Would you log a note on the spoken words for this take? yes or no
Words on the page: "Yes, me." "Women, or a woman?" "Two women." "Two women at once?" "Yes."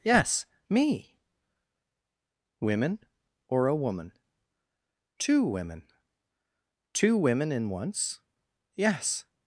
yes